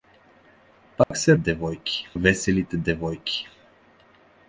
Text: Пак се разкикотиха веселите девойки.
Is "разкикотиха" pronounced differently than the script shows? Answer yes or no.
yes